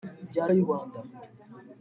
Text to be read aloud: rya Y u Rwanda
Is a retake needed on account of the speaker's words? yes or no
no